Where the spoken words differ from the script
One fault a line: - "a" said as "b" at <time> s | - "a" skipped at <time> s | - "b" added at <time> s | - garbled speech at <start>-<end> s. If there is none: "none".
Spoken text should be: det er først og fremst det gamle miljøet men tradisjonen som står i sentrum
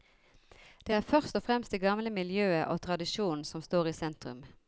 - "men" said as "og" at 2.7 s